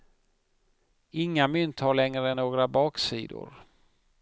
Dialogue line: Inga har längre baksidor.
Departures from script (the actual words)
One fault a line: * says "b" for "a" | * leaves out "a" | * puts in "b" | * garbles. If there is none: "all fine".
* puts in "mynt"
* puts in "några"